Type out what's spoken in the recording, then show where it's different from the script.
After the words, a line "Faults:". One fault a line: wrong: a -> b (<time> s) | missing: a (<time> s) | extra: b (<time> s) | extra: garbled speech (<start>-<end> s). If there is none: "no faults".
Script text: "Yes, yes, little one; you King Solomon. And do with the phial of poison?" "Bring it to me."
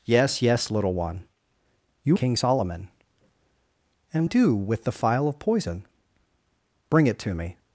"Yes, yes, little one; you King Solomon. And do with the phial of poison?" "Bring it to me."
Faults:
no faults